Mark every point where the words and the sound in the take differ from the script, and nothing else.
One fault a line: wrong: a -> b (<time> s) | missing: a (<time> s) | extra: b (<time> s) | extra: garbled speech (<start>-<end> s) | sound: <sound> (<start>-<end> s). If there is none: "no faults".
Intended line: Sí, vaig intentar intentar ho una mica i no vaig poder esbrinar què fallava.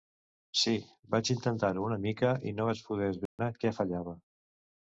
missing: intentar (1.7 s)
sound: dropout (3.3-3.4 s)